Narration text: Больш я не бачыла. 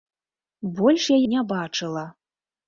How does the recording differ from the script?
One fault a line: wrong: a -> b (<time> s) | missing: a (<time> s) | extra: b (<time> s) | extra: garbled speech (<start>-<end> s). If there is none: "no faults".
no faults